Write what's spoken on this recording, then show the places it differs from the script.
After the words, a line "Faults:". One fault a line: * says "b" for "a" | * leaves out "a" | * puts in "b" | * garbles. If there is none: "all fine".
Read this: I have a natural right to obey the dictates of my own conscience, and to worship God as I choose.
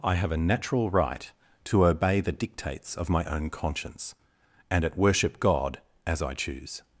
I have a natural right to obey the dictates of my own conscience, and at worship God as I choose.
Faults:
* says "at" for "to"